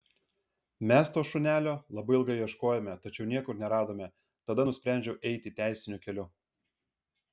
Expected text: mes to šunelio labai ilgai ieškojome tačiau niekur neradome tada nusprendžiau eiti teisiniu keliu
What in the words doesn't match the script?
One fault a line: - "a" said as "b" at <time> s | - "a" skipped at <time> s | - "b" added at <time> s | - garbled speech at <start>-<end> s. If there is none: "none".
none